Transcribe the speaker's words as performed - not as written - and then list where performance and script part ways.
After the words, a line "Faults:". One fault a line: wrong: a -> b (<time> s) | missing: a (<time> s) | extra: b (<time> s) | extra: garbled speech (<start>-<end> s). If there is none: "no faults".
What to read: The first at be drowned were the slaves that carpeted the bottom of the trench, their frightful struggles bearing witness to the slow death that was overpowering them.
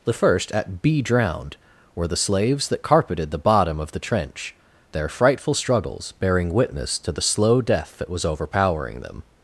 The first at be drowned were the slaves that carpeted the bottom of the trench, their frightful struggles bearing witness to the slow death that was overpowering them.
Faults:
no faults